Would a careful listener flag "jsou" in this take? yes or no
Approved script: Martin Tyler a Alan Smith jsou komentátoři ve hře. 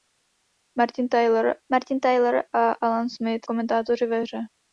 yes